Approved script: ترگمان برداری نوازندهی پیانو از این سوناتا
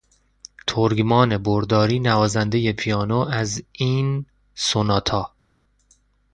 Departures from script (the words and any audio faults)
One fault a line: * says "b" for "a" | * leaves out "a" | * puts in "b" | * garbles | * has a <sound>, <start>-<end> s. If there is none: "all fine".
all fine